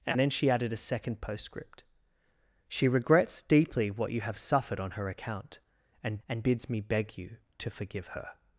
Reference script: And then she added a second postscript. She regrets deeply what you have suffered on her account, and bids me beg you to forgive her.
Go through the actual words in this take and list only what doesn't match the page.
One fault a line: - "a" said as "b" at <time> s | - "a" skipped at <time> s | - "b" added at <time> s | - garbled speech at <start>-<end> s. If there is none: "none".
- "and" added at 6.3 s